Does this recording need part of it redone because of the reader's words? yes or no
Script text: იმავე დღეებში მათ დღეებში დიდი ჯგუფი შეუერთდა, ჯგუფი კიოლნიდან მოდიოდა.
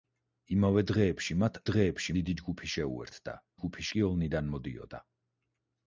no